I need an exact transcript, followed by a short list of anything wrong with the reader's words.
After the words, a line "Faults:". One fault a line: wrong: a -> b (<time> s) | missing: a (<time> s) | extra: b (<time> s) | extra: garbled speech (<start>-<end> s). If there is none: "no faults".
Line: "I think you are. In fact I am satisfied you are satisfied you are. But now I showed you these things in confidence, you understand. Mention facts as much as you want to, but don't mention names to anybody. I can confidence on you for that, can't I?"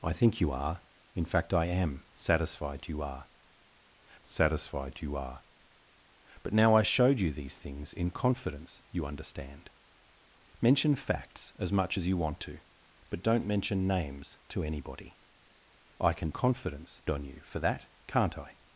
"I think you are. In fact I am satisfied you are satisfied you are. But now I showed you these things in confidence, you understand. Mention facts as much as you want to, but don't mention names to anybody. I can confidence on you for that, can't I?"
Faults:
no faults